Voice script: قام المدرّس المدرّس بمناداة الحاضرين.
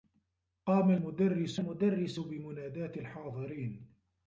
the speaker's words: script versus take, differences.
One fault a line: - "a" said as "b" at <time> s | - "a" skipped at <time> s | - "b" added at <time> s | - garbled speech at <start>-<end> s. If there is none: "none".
none